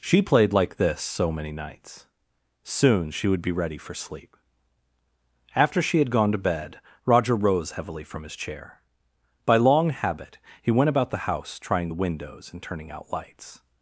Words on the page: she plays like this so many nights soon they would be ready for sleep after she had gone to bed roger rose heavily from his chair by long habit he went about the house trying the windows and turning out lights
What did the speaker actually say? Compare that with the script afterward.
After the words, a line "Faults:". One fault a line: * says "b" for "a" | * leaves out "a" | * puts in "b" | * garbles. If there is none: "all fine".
she played like this so many nights soon she would be ready for sleep after she had gone to bed roger rose heavily from his chair by long habit he went about the house trying the windows and turning out lights
Faults:
* says "played" for "plays"
* says "she" for "they"